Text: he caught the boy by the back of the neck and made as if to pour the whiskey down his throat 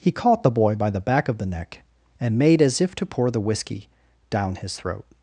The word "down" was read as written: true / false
true